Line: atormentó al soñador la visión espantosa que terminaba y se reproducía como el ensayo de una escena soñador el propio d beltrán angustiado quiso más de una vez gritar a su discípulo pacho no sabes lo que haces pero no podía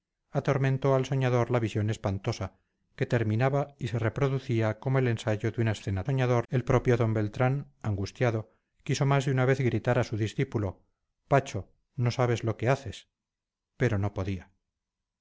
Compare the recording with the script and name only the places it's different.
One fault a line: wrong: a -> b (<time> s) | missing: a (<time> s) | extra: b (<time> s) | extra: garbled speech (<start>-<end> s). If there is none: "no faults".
no faults